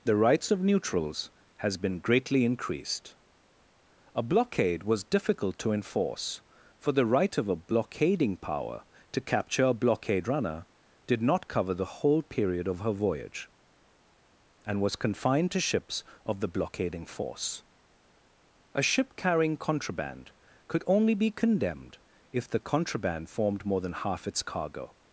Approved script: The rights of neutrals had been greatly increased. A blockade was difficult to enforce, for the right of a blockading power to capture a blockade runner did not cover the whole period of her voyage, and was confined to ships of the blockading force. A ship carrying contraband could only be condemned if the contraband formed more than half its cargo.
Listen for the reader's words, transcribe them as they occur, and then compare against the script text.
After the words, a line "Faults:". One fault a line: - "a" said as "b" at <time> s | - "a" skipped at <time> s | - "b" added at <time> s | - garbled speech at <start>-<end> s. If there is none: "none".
The rights of neutrals has been greatly increased. A blockade was difficult to enforce, for the right of a blockading power to capture a blockade runner did not cover the whole period of her voyage, and was confined to ships of the blockading force. A ship carrying contraband could only be condemned if the contraband formed more than half its cargo.
Faults:
- "had" said as "has" at 1.6 s